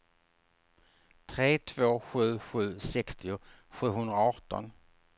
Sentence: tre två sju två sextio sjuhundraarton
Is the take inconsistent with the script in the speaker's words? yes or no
yes